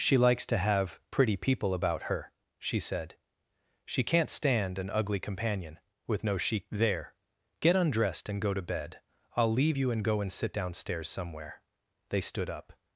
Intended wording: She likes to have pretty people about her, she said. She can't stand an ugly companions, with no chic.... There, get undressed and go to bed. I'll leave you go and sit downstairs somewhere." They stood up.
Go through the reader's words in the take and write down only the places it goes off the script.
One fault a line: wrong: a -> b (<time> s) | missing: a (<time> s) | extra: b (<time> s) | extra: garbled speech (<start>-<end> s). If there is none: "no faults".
wrong: companions -> companion (5.2 s)
extra: and (9.9 s)